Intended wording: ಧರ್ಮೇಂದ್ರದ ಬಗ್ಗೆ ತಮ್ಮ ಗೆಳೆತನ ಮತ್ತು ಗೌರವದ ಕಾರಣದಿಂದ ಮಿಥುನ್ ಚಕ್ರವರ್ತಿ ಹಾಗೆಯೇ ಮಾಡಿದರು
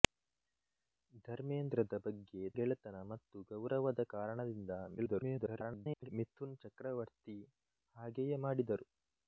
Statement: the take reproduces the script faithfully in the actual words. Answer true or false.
false